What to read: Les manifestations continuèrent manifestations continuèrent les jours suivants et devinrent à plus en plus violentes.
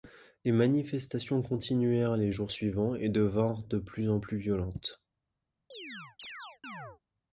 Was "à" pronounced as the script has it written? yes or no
no